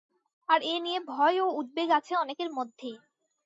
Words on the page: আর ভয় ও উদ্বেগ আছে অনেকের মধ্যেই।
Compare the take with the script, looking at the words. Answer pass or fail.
fail